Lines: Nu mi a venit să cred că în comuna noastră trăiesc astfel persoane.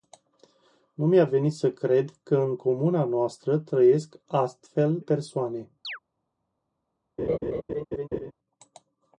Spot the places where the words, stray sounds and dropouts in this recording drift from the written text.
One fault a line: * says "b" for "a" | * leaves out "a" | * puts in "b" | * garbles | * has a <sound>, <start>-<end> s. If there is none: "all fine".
* has a chirp, 5.8-6.0 s
* has a laugh, 7.2-8.3 s